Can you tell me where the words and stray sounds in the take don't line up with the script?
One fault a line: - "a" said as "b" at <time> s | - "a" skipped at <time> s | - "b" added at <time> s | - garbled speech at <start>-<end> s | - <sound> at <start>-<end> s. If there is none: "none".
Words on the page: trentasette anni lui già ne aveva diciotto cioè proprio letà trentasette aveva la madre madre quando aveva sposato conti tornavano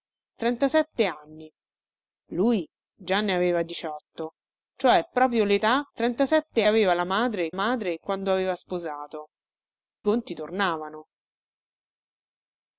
none